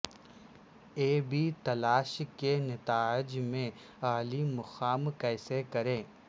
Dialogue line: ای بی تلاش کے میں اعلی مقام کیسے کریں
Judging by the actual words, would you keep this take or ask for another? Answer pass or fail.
fail